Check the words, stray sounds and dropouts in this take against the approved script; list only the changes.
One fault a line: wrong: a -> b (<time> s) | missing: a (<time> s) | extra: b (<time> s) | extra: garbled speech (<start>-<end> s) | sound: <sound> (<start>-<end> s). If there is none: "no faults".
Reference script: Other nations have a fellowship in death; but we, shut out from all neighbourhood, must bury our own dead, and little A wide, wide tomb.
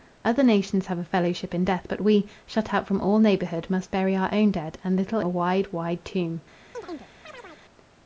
sound: chirp (6.7-7.6 s)